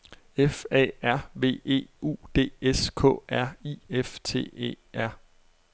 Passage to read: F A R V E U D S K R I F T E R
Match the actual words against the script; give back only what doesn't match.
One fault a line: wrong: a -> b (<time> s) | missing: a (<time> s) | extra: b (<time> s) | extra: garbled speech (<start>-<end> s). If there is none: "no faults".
no faults